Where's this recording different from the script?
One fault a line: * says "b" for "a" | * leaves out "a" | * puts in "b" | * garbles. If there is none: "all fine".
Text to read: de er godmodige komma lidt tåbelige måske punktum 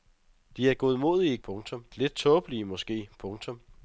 * says "punktum" for "komma"